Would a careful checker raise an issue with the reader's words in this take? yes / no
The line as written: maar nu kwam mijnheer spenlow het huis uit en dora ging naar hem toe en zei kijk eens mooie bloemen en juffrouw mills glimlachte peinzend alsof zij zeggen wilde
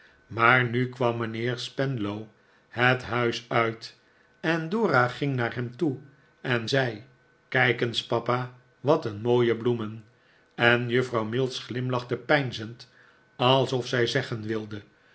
yes